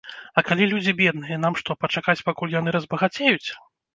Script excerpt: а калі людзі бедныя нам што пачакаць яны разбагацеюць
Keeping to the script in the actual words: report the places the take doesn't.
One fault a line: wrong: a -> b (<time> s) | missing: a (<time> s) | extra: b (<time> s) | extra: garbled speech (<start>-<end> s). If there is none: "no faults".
extra: пакуль (2.3 s)